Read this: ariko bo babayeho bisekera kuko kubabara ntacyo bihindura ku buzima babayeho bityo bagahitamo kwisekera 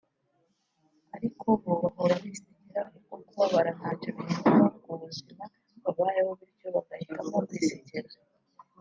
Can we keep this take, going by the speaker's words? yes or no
no